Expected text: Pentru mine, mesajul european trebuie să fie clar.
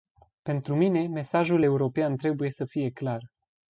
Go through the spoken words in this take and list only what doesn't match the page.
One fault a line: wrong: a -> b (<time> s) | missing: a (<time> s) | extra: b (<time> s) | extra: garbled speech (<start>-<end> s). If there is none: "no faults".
no faults